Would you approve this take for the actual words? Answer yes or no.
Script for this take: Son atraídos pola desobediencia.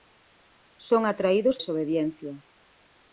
no